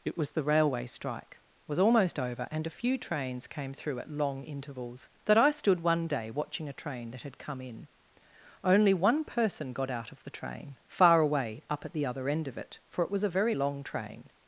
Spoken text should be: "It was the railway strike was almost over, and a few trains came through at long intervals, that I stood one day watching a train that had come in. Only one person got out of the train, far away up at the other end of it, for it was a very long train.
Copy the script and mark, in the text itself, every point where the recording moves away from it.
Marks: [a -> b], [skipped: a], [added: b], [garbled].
"It was the railway strike was almost over, and a few trains came through at long intervals, that I stood one day watching a train that had come in. Only one person got out of the train, far away up at the other end of it, for it was a very long train.